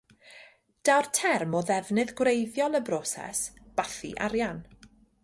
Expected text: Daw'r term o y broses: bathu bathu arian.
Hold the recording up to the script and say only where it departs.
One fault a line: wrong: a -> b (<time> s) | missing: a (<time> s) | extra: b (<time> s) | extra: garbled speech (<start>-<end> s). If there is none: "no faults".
extra: ddefnydd gwreiddiol (1.7 s)
missing: bathu (4.1 s)